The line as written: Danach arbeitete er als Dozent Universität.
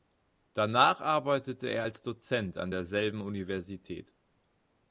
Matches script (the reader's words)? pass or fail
fail